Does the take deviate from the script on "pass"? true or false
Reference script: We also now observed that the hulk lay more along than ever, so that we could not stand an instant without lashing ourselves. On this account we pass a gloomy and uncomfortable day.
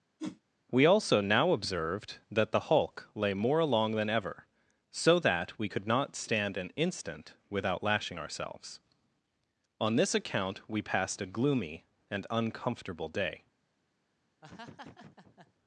true